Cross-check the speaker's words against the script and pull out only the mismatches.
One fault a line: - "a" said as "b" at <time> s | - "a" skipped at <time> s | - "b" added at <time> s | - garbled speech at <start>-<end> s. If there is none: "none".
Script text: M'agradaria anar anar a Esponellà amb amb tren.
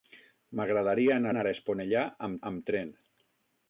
none